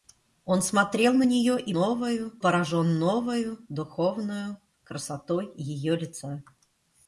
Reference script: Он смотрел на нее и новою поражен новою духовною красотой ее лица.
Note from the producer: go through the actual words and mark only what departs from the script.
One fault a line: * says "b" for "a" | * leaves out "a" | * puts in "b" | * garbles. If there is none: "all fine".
all fine